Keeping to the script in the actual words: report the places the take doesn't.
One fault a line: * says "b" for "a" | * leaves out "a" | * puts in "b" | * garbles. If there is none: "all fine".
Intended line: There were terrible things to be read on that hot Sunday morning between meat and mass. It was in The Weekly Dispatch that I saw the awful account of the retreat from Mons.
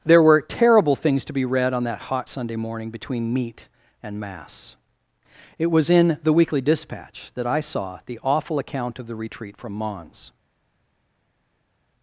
all fine